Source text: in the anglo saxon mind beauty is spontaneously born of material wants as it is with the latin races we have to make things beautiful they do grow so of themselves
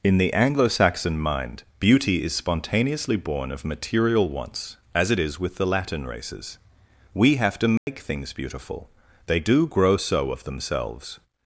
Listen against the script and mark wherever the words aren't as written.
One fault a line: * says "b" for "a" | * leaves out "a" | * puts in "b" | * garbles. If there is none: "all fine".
all fine